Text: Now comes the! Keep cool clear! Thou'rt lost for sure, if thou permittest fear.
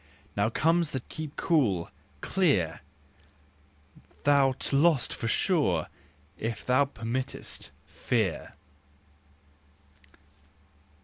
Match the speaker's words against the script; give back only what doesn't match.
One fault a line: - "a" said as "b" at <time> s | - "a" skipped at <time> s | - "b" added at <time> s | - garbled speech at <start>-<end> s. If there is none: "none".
none